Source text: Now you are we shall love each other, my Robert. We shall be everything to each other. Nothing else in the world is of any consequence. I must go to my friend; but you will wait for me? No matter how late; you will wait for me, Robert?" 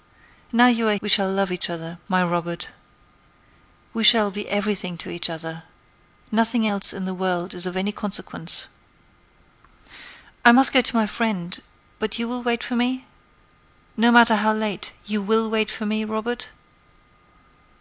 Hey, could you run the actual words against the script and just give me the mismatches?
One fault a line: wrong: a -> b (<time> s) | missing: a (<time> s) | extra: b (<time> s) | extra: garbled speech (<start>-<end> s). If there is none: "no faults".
no faults